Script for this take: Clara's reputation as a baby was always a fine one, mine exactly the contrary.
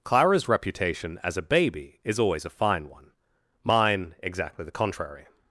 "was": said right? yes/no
no